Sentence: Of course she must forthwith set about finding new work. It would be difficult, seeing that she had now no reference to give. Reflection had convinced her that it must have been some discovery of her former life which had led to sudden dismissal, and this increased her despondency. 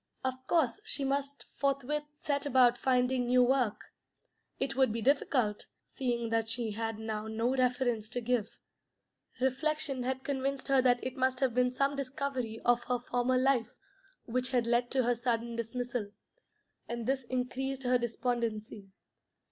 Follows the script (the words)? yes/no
no